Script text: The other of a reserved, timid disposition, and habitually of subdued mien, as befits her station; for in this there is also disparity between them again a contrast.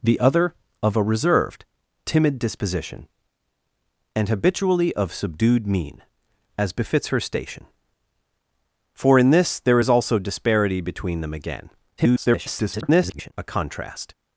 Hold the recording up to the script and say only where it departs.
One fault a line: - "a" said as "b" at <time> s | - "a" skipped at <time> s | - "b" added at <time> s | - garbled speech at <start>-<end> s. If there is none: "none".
- garbled speech at 12.0-13.3 s